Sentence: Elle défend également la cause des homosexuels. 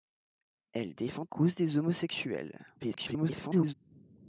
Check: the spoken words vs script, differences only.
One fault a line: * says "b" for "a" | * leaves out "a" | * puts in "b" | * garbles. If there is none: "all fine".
* leaves out "également la"
* garbles